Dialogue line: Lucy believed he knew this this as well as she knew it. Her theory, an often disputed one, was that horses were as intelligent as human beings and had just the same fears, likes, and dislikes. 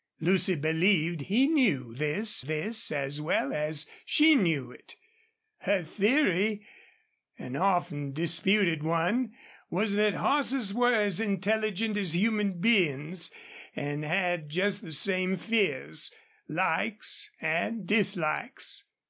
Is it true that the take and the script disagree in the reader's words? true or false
false